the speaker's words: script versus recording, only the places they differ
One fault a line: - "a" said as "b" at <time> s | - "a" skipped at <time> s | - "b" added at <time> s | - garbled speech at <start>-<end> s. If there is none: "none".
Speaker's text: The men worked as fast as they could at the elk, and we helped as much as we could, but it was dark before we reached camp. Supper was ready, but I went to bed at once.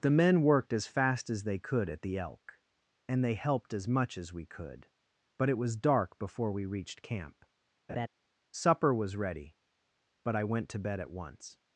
- "we" said as "they" at 3.2 s